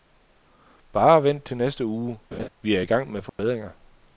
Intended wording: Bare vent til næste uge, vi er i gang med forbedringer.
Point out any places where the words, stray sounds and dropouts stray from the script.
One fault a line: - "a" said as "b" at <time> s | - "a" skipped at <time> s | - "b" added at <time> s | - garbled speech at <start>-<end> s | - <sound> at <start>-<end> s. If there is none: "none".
- laugh at 2.3-2.5 s
- dropout at 3.3-3.4 s